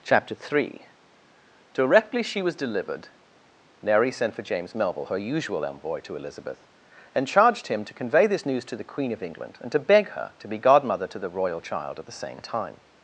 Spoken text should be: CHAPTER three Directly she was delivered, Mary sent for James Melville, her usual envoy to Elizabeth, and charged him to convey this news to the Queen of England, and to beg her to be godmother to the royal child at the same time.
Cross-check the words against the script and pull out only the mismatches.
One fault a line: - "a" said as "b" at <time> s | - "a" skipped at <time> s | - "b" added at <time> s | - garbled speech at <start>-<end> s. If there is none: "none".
none